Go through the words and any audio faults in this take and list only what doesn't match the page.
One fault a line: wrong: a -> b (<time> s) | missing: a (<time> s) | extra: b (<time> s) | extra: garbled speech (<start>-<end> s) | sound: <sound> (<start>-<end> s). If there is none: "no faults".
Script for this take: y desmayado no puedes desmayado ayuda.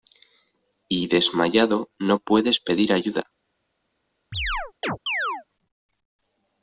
wrong: desmayado -> pedir (2.6 s)
sound: chirp (4.3-5.4 s)